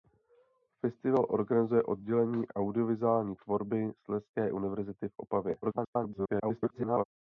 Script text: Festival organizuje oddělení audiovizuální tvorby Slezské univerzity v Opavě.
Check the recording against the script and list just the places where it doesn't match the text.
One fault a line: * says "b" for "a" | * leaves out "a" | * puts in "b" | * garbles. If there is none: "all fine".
* garbles